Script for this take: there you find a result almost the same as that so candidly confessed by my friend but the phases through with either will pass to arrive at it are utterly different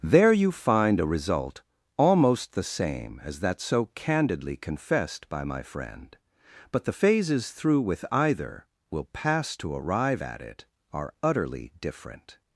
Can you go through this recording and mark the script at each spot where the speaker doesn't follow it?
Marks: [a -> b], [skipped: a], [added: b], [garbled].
there you find a result almost the same as that so candidly confessed by my friend but the phases through with either will pass to arrive at it are utterly different